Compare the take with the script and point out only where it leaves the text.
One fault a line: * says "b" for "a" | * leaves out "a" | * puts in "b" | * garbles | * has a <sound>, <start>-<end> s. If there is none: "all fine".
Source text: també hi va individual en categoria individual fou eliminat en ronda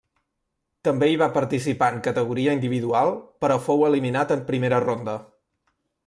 * says "participar" for "individual"
* puts in "però"
* puts in "primera"